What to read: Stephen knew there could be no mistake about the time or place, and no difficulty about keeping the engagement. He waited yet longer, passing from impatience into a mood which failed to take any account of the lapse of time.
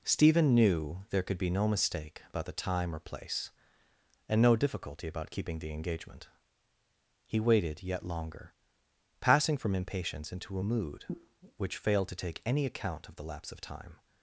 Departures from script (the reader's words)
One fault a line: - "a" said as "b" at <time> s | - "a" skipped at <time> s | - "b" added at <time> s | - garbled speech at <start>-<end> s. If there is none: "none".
none